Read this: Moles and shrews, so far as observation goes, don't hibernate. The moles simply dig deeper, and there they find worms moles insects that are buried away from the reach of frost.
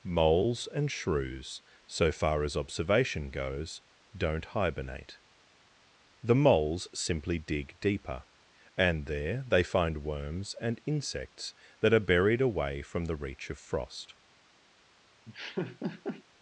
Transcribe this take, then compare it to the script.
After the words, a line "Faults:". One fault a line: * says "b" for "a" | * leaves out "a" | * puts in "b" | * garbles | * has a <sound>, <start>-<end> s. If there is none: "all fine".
Moles and shrews, so far as observation goes, don't hibernate. The moles simply dig deeper, and there they find worms and insects that are buried away from the reach of frost.
Faults:
* says "and" for "moles"
* has a laugh, 15.2-16.2 s